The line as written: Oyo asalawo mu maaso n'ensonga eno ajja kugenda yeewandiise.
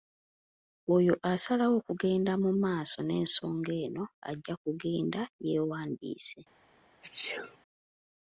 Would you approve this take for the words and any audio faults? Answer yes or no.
no